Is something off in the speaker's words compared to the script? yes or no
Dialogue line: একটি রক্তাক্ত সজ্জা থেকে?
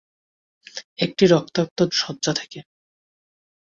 no